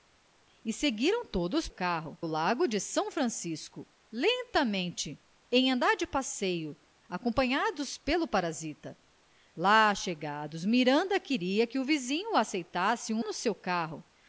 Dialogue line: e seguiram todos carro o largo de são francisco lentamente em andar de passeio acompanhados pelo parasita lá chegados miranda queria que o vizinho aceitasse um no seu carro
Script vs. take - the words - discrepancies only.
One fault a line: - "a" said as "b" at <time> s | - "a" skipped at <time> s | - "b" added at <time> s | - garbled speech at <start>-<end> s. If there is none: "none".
none